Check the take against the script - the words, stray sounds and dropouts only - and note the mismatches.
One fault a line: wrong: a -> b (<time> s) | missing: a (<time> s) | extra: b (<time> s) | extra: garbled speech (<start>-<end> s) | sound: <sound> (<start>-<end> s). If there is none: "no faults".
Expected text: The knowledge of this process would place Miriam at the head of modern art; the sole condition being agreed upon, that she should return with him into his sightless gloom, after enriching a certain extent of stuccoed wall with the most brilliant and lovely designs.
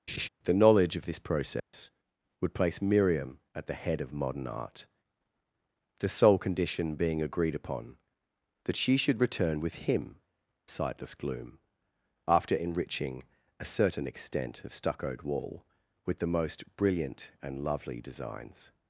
sound: laugh (0.1-0.3 s)
sound: dropout (1.6-1.7 s)
missing: into his (10.2 s)